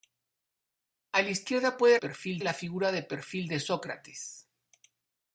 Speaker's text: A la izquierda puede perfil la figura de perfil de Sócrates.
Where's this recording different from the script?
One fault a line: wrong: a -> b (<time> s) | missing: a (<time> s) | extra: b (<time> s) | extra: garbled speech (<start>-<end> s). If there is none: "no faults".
no faults